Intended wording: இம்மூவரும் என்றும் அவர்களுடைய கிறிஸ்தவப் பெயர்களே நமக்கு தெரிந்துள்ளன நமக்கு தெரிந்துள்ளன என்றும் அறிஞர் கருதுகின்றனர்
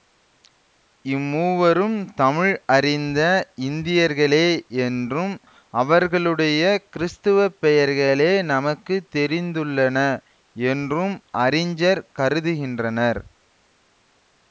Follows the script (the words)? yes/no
no